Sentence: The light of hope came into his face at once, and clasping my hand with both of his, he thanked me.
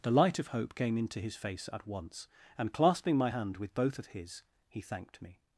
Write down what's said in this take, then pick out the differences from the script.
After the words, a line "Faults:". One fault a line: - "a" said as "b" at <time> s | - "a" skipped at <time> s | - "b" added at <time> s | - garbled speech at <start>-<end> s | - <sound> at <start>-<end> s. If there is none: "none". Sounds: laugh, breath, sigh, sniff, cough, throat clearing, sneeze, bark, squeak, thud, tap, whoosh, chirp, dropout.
The light of hope came into his face at once, and clasping my hand with both of his, he thanked me.
Faults:
none